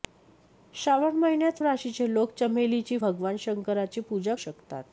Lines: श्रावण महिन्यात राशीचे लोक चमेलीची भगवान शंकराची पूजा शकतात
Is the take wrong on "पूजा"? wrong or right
right